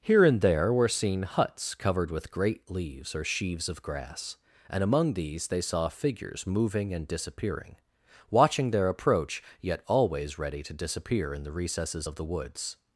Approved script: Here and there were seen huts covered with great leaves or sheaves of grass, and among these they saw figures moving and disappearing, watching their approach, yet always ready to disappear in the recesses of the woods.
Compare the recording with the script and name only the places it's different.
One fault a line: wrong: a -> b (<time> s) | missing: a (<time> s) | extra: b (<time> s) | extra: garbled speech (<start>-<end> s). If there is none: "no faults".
no faults